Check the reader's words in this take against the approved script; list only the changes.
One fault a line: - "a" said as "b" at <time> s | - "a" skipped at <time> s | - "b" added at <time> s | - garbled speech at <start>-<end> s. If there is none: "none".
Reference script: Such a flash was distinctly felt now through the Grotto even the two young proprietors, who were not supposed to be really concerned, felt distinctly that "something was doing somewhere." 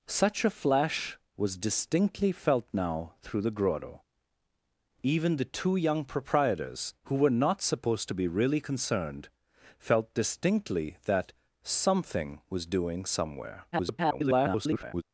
- garbled speech at 13.7-15.0 s